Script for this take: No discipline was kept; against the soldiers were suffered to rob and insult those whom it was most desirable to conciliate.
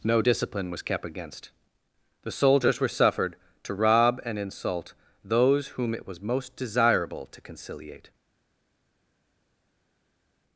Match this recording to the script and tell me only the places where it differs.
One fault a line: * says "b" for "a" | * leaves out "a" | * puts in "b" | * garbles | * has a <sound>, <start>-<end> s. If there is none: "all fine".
all fine